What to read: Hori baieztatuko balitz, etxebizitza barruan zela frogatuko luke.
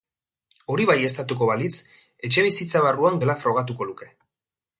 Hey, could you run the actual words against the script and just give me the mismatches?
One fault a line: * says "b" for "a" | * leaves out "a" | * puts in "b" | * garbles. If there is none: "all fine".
all fine